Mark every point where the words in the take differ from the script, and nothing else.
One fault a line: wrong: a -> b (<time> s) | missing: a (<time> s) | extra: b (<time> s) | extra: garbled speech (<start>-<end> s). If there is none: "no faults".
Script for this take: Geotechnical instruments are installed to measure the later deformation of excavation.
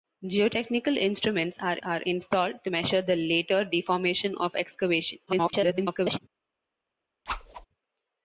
extra: are (1.8 s)
extra: garbled speech (5.3-6.2 s)